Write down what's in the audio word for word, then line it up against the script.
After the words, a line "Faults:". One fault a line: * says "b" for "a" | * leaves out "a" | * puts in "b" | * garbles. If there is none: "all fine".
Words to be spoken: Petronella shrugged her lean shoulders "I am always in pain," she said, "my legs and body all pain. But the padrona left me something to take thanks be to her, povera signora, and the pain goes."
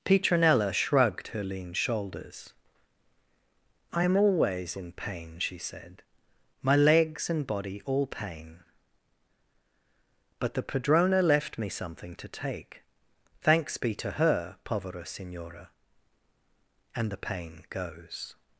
Petronella shrugged her lean shoulders "I am always in pain," she said, "my legs and body all pain. But the padrona left me something to take thanks be to her, povera signora, and the pain goes."
Faults:
all fine